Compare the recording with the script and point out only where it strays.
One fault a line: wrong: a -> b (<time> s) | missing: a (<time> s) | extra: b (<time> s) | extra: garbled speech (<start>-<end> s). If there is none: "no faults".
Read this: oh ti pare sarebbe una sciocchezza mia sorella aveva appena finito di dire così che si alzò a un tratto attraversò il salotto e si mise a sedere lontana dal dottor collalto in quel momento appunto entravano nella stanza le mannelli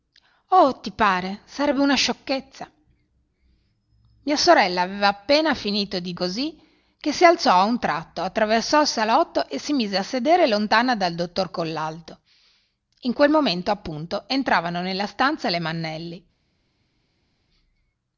missing: dire (6.1 s)